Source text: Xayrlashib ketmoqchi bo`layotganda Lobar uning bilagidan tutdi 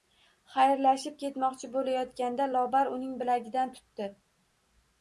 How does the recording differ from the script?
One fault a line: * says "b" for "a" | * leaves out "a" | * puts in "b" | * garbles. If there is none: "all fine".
all fine